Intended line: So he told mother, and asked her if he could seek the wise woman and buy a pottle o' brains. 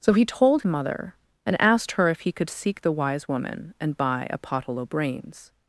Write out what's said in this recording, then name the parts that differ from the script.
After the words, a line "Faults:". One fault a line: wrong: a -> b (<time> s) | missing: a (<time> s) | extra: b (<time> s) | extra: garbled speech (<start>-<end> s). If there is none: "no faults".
So he told mother, and asked her if he could seek the wise woman and buy a pottle o' brains.
Faults:
no faults